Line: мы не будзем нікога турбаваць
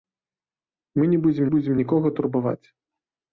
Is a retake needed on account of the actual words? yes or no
yes